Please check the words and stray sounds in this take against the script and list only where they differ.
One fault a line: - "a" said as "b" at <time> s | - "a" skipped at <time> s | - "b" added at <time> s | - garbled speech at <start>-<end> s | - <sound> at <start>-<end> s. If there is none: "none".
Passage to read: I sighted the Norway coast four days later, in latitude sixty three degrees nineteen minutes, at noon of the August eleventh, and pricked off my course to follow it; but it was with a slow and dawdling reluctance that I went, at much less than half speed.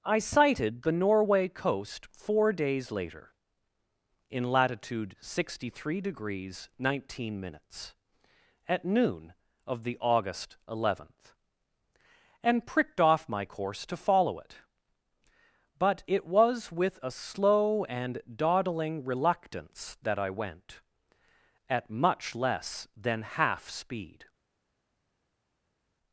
none